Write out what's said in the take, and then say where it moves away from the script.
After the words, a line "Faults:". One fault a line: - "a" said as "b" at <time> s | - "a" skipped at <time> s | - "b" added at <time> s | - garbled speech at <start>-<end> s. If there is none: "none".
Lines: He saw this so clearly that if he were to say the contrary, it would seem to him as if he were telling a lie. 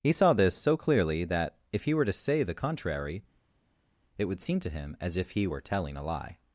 He saw this so clearly that if he were to say the contrary, it would seem to him as if he were telling a lie.
Faults:
none